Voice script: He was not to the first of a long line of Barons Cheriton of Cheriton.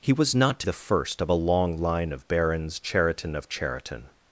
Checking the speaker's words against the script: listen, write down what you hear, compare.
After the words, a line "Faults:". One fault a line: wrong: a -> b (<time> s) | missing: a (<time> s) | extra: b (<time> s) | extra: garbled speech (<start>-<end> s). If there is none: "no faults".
He was not to the first of a long line of Barons Cheriton of Cheriton.
Faults:
no faults